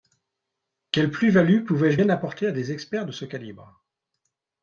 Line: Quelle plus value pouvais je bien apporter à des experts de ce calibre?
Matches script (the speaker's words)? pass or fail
pass